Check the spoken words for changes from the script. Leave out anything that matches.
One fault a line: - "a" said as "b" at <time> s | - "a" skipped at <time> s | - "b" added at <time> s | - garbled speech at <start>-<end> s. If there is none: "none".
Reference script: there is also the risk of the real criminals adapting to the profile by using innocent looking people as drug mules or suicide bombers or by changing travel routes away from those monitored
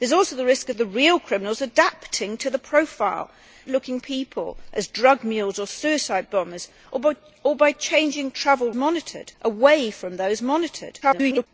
- "by using innocent" skipped at 3.3 s
- "routes" said as "monitored" at 8.7 s
- garbled speech at 11.0-11.5 s